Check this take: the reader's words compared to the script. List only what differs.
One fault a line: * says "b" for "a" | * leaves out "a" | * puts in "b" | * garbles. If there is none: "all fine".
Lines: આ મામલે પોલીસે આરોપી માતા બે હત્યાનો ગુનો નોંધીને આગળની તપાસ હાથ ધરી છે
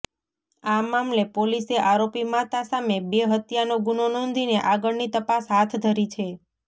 * puts in "સામે"